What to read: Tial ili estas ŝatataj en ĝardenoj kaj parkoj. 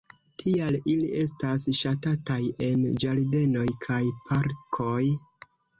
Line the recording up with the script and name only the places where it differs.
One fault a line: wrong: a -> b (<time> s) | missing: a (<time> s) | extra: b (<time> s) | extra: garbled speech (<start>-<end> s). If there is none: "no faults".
no faults